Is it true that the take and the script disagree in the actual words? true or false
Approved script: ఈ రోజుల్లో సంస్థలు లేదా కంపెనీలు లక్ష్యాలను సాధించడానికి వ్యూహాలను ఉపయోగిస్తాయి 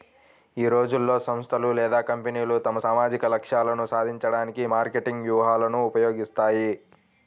true